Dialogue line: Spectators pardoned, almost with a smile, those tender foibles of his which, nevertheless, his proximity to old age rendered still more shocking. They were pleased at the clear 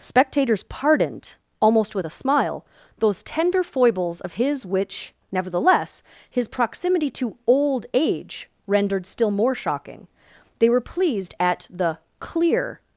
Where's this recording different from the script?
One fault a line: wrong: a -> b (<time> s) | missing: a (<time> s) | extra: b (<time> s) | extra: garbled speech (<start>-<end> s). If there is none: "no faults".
no faults